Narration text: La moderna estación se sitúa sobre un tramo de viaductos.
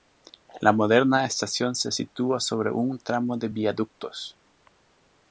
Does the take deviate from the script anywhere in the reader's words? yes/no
no